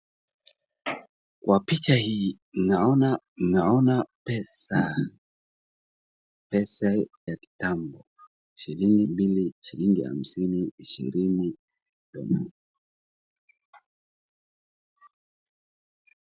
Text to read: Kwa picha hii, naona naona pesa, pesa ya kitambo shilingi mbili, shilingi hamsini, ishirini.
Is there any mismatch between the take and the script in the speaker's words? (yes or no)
no